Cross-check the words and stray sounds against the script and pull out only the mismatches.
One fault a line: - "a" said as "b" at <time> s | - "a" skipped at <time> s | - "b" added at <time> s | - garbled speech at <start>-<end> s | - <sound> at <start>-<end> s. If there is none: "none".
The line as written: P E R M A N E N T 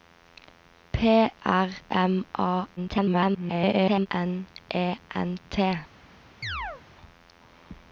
- "E" skipped at 1.3 s
- garbled speech at 2.8-4.1 s
- chirp at 6.4-6.8 s